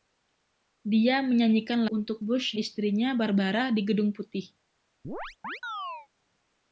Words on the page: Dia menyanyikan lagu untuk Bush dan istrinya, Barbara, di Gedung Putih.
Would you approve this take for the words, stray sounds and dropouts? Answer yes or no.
no